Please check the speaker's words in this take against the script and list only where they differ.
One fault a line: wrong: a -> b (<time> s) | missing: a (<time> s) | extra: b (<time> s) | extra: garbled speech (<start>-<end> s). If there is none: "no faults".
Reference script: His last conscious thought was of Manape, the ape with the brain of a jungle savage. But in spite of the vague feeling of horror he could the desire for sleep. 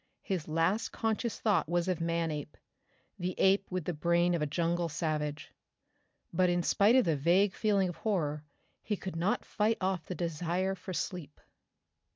extra: not fight off (9.2 s)